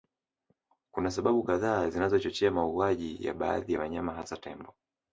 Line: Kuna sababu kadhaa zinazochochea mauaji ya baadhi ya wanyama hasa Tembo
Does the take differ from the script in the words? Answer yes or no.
no